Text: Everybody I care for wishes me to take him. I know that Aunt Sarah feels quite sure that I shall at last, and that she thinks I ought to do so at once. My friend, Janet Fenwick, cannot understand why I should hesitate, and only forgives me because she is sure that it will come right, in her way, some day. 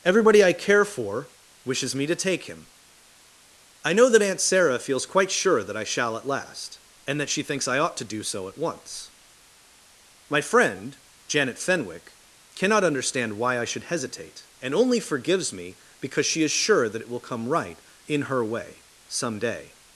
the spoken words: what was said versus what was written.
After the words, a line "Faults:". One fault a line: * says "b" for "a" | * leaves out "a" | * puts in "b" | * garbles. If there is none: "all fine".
Everybody I care for wishes me to take him. I know that Aunt Sarah feels quite sure that I shall at last, and that she thinks I ought to do so at once. My friend, Janet Fenwick, cannot understand why I should hesitate, and only forgives me because she is sure that it will come right, in her way, some day.
Faults:
all fine